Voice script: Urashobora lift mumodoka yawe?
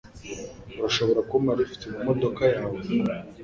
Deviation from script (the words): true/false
true